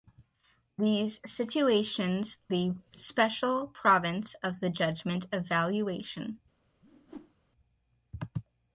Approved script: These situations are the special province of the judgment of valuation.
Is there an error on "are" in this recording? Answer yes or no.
yes